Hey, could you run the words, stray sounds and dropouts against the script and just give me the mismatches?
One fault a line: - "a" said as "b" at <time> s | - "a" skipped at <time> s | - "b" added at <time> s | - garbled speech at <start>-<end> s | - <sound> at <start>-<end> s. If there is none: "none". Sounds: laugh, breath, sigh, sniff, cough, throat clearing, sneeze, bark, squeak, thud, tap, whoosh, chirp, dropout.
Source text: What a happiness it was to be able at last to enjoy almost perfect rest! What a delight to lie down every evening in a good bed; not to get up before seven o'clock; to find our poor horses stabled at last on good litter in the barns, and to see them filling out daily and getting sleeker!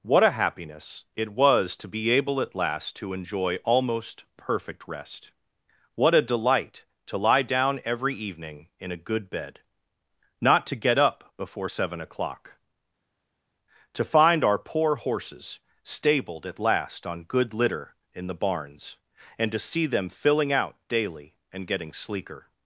none